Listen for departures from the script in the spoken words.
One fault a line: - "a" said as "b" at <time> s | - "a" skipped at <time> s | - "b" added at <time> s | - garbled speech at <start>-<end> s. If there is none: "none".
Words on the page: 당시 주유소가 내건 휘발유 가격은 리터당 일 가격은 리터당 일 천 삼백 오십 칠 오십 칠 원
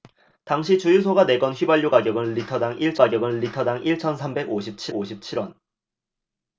none